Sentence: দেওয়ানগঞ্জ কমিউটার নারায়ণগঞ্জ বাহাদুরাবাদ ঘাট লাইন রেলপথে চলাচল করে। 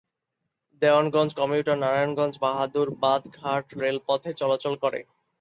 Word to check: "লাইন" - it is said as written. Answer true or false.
false